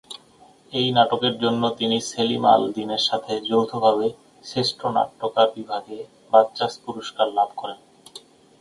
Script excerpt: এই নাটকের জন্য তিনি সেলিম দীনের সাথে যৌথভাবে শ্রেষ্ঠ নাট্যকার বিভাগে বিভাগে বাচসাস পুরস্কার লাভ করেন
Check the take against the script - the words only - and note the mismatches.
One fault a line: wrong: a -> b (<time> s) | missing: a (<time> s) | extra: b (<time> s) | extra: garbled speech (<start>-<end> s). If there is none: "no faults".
extra: আল (2.5 s)
missing: বিভাগে (6.0 s)